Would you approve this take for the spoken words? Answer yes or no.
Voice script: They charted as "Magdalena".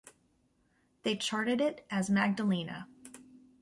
no